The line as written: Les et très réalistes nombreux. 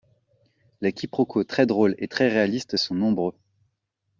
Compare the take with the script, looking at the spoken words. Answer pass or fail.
fail